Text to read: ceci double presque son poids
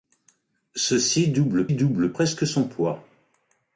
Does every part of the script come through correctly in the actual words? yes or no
no